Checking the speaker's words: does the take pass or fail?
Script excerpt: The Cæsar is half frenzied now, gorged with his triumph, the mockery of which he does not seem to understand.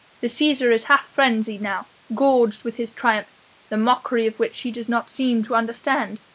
pass